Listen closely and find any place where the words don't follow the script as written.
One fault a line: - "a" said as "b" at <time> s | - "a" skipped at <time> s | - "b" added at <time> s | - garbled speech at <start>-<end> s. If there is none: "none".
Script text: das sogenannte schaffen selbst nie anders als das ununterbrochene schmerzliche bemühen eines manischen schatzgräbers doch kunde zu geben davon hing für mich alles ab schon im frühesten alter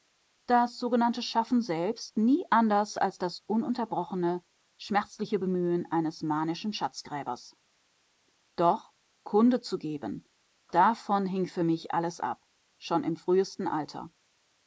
none